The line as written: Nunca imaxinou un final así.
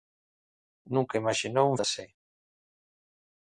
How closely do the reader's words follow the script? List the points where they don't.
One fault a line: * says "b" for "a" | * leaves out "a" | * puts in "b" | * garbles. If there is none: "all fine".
* leaves out "final"